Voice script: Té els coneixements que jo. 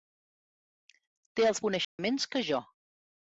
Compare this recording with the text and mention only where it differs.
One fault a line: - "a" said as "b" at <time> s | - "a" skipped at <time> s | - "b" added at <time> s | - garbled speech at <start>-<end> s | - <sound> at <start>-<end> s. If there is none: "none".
- dropout at 1.8-2.0 s